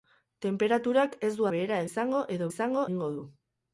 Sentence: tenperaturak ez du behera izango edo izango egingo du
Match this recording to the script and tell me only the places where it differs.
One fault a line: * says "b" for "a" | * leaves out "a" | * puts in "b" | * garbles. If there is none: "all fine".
all fine